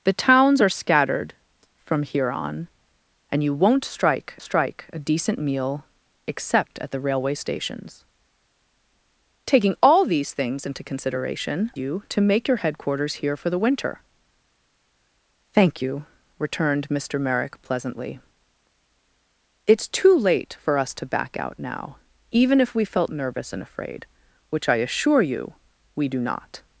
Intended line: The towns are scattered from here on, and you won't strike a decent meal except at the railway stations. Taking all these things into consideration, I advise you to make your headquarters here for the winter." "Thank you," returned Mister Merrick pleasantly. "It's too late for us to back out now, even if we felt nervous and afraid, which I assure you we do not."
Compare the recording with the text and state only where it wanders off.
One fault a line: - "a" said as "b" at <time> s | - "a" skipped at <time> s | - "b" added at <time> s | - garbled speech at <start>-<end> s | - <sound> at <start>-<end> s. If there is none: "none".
- "strike" added at 4.4 s
- "I advise" skipped at 11.7 s